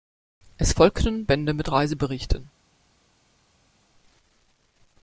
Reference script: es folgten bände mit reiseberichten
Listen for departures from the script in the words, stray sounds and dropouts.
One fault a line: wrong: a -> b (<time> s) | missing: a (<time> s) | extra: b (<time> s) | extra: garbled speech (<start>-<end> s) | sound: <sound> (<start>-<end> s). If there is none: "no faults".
no faults